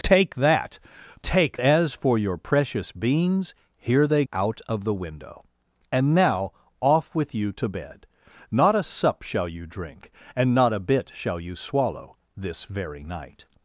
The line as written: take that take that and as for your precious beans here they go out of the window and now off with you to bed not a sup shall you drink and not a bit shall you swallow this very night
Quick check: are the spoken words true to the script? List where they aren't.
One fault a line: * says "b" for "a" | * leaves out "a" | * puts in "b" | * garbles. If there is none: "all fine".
* leaves out "that and"
* leaves out "go"